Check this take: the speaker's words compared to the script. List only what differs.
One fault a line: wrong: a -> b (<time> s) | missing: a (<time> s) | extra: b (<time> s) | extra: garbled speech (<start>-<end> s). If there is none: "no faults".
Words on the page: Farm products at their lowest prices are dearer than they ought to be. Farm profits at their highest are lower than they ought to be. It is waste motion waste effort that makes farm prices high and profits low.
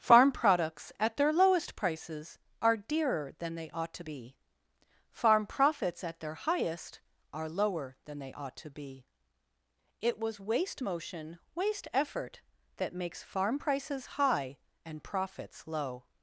wrong: is -> was (10.2 s)